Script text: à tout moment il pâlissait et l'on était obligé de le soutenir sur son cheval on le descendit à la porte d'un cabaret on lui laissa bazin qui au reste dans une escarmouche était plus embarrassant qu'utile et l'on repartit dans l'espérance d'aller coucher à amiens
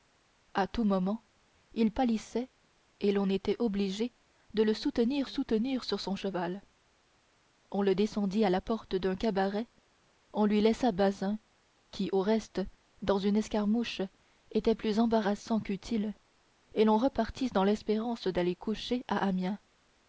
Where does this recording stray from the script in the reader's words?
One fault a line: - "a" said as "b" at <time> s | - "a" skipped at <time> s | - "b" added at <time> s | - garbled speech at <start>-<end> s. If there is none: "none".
- "soutenir" added at 5.2 s